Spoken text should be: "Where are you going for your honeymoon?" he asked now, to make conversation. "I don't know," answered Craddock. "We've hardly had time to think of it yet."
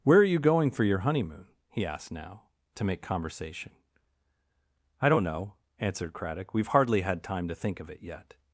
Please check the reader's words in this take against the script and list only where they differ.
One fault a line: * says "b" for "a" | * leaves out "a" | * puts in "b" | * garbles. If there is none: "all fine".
all fine